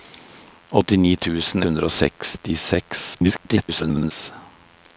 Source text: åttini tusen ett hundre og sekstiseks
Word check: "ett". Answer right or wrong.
wrong